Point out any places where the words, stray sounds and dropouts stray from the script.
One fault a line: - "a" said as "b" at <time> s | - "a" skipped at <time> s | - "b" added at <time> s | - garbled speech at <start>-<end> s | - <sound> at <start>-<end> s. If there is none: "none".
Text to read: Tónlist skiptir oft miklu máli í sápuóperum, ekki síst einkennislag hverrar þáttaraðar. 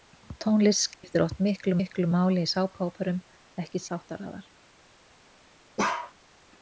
- dropout at 0.9-1.0 s
- "miklu" added at 1.8 s
- "síst einkennislag hverrar" skipped at 3.8 s
- bark at 5.8-6.1 s